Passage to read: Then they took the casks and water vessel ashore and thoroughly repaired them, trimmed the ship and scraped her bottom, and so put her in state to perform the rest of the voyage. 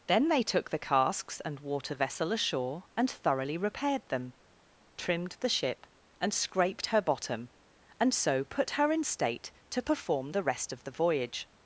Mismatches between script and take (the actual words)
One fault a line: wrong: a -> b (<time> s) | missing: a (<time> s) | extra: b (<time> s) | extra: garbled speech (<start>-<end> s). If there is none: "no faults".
no faults